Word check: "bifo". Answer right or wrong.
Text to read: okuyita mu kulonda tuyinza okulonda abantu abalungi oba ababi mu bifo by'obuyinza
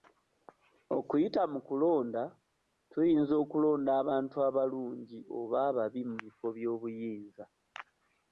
right